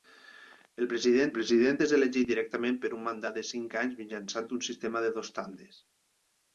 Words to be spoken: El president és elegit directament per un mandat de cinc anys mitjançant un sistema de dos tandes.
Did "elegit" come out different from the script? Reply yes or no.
no